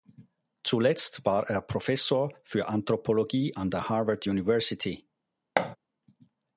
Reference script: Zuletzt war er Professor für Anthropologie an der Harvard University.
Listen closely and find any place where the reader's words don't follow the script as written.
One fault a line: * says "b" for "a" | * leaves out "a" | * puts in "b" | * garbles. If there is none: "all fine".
all fine